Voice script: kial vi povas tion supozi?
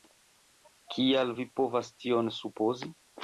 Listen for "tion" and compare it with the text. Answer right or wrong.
right